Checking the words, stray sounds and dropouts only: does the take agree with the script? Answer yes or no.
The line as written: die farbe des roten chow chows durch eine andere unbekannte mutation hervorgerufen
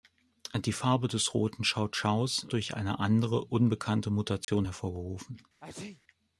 no